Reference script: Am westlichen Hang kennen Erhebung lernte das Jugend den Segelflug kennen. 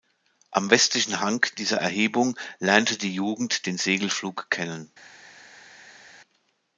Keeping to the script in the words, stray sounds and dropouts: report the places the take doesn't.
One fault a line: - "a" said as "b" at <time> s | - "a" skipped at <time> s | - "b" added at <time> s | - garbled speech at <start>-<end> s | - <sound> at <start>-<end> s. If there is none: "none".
- "kennen" said as "dieser" at 1.6 s
- "das" said as "die" at 3.0 s